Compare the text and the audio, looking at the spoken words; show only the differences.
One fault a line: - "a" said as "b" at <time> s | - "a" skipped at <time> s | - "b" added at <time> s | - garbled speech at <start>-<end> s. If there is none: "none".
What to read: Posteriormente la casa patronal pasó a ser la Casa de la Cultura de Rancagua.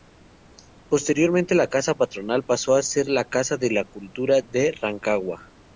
none